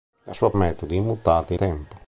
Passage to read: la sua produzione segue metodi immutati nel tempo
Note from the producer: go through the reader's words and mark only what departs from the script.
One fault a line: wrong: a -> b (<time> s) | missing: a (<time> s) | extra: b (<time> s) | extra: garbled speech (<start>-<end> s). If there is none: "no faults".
missing: produzione segue (0.5 s)
missing: nel (1.6 s)